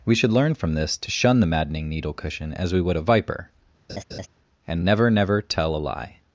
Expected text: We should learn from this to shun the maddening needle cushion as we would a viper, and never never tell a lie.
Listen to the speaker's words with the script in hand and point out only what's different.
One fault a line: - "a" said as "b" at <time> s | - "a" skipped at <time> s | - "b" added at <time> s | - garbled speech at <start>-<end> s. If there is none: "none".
none